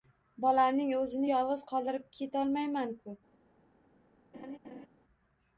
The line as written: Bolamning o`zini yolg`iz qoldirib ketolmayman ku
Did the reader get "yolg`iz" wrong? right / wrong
right